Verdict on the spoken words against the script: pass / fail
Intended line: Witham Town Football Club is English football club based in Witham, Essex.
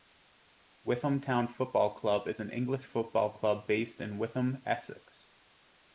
fail